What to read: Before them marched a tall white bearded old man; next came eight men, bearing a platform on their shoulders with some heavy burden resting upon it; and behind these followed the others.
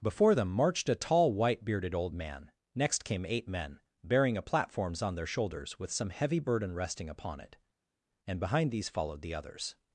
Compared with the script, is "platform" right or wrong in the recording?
wrong